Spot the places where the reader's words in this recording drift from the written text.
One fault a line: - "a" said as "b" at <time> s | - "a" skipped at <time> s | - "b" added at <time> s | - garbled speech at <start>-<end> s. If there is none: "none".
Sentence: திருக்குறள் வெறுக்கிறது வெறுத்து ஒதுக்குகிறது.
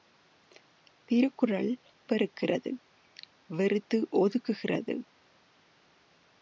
none